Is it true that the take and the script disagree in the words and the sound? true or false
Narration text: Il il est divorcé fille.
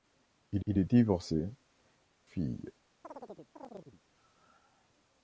true